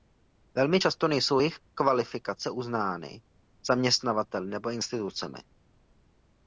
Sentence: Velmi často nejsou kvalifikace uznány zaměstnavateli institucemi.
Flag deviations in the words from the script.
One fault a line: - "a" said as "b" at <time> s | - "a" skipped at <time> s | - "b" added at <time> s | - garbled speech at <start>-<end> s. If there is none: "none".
- "jejich" added at 1.4 s
- "nebo" added at 4.5 s